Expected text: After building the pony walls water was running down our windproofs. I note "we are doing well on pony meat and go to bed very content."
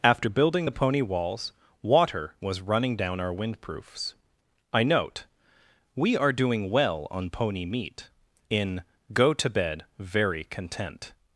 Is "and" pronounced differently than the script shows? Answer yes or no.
yes